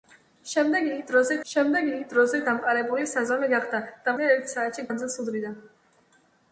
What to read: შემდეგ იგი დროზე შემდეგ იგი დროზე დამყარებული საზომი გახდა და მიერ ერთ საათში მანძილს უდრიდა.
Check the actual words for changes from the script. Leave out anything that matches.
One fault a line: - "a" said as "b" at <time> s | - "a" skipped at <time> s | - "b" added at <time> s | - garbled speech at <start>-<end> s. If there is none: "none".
none